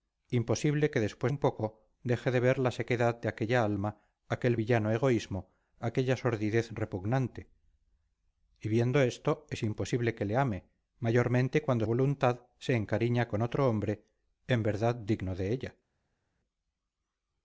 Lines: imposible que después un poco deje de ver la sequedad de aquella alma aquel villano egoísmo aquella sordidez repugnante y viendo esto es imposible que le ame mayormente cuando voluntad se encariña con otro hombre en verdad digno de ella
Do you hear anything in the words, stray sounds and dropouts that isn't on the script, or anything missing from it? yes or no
no